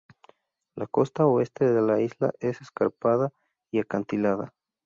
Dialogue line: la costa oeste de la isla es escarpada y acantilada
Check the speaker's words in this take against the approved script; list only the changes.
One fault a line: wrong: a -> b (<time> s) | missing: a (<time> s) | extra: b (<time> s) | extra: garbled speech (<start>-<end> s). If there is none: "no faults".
no faults